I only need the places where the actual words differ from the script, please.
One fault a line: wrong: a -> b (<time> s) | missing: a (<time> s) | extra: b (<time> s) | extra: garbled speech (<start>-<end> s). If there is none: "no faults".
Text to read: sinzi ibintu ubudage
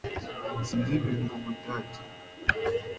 no faults